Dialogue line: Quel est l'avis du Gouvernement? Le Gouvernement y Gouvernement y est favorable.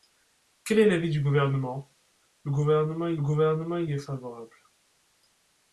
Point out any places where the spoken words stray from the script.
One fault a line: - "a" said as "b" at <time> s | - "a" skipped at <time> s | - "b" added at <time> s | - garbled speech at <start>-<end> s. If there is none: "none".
none